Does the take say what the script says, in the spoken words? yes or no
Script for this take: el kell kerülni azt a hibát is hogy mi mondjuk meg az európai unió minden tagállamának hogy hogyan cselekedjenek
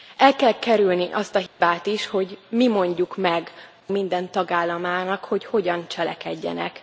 no